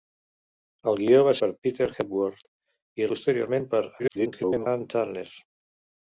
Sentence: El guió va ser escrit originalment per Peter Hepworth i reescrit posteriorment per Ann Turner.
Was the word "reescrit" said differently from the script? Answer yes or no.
yes